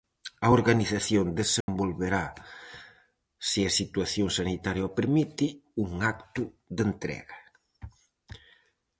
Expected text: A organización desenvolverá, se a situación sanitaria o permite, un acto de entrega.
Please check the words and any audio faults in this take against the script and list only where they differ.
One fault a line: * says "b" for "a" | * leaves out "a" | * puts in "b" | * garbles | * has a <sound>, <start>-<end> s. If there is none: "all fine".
* has a dropout, 1.6-1.7 s